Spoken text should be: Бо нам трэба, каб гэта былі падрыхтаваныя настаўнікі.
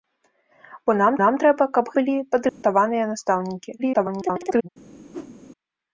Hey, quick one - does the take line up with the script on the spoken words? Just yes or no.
no